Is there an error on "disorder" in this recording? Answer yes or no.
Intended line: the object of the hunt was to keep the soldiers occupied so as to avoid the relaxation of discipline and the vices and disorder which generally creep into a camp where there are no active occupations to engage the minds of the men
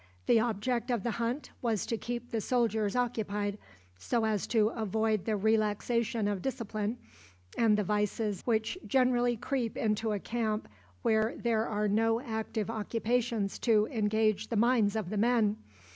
yes